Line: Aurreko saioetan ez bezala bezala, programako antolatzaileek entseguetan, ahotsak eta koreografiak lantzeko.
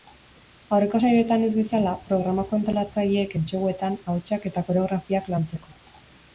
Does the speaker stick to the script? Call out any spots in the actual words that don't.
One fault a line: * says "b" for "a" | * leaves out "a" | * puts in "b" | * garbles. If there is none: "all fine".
* leaves out "bezala"